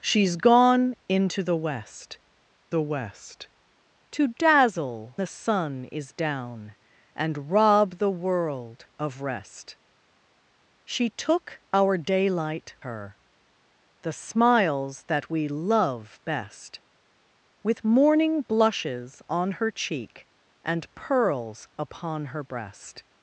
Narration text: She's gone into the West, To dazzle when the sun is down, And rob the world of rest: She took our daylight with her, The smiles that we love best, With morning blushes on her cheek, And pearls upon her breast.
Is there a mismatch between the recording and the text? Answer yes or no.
yes